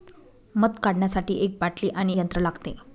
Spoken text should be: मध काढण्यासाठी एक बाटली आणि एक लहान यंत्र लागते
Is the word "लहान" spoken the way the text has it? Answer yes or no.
no